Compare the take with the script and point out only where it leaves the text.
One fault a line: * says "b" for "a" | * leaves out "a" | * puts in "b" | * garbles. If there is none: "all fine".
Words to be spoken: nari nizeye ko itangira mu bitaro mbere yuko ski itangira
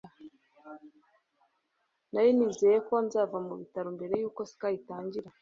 * says "nzava" for "itangira"